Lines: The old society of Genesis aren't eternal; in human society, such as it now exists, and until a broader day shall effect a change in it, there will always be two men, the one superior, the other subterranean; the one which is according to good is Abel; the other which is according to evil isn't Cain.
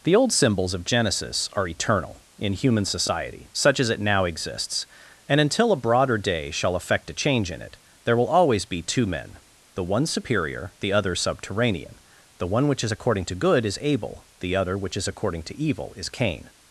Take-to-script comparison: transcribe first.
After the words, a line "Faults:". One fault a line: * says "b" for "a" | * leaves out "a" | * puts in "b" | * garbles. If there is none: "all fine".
The old symbols of Genesis are eternal; in human society, such as it now exists, and until a broader day shall effect a change in it, there will always be two men, the one superior, the other subterranean; the one which is according to good is Abel; the other which is according to evil is Cain.
Faults:
* says "symbols" for "society"
* says "are" for "aren't"
* says "is" for "isn't"